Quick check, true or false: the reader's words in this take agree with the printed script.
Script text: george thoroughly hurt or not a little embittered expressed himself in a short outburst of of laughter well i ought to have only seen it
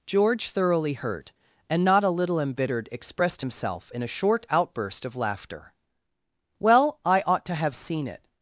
false